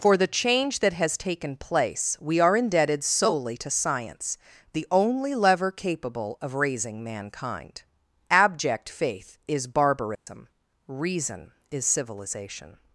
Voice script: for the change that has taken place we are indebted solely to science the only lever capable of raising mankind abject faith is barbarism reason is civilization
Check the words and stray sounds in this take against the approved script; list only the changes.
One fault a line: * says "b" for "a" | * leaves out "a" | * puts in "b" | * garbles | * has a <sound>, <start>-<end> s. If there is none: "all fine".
* has a dropout, 10.1-10.3 s